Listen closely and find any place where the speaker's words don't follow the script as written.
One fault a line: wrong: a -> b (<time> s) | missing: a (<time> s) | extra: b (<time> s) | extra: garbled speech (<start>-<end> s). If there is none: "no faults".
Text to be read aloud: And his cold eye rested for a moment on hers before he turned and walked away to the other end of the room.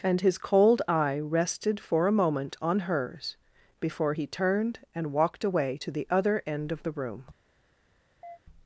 no faults